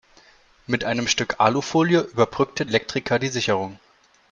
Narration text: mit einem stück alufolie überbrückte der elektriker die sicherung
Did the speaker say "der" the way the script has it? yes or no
no